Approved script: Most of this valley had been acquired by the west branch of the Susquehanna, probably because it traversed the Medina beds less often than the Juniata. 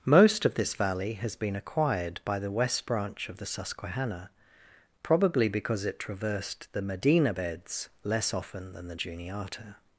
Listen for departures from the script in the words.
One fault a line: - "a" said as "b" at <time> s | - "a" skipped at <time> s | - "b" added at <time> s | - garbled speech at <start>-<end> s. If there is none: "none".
- "had" said as "has" at 1.1 s